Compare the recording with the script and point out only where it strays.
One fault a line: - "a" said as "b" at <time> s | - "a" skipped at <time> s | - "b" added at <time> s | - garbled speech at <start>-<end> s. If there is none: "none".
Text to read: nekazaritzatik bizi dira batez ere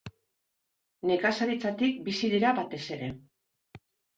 none